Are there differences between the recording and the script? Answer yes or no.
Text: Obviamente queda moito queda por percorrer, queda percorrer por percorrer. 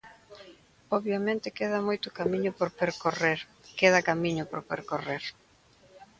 yes